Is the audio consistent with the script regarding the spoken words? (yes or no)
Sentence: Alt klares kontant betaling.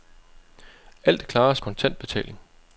yes